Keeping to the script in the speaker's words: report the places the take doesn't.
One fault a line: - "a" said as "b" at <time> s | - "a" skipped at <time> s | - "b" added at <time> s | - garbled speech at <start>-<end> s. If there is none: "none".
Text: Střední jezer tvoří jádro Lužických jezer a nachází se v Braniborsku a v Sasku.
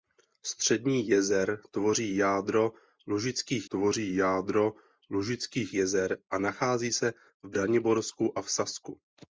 - "tvoří jádro Lužických" added at 3.7 s